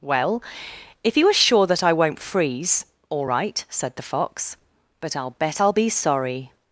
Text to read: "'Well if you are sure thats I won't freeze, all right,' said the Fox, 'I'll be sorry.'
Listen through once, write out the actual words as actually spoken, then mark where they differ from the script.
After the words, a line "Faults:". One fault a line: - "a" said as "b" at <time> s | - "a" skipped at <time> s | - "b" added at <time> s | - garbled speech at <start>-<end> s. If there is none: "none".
"'Well if you are sure that I won't freeze, all right,' said the Fox, 'but I'll bet I'll be sorry.'
Faults:
- "thats" said as "that" at 1.7 s
- "but I'll bet" added at 5.0 s